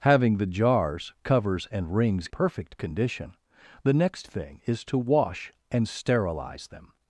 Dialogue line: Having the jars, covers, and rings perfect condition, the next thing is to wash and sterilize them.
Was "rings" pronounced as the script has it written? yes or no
yes